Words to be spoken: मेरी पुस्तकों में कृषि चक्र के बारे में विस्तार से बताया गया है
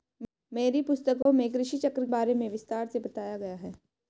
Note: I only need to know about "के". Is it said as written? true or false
false